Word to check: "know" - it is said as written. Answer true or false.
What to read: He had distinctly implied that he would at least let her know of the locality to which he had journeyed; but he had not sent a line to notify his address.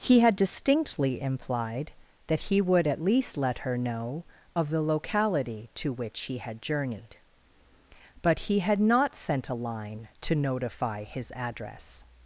true